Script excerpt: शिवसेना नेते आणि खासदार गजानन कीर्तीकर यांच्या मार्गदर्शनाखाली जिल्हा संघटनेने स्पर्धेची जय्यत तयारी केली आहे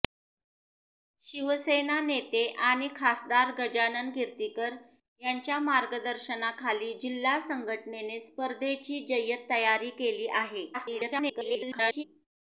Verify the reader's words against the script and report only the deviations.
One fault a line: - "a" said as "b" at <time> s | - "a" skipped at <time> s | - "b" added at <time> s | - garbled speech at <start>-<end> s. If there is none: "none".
- garbled speech at 10.7-12.0 s